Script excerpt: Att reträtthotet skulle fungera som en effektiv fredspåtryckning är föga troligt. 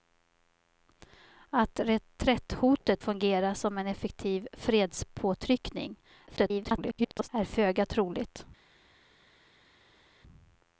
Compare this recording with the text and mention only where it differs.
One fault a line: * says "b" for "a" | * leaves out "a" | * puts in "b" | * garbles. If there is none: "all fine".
* leaves out "skulle"
* garbles